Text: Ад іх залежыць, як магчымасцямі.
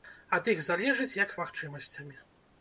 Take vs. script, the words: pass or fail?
pass